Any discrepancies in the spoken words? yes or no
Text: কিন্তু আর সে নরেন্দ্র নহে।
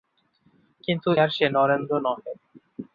no